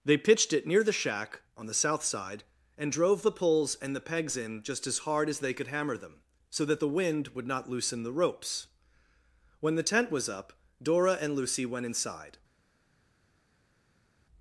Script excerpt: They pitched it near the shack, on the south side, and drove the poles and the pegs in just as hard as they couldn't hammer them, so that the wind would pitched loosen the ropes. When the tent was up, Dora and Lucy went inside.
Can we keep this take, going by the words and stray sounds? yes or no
no